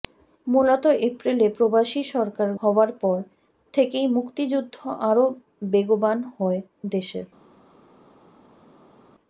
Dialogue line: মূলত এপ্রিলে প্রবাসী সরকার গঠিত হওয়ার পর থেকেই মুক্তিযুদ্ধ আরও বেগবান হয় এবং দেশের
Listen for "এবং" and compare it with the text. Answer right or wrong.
wrong